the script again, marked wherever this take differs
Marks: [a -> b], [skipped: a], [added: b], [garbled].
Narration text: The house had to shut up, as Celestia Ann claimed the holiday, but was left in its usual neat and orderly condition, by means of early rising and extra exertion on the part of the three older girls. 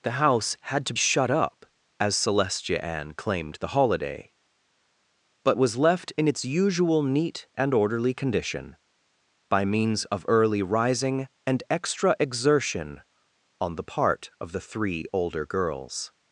The house had to shut up, as Celestia Ann claimed the holiday, but was left in its usual neat and orderly condition, by means of early rising and extra exertion on the part of the three older girls.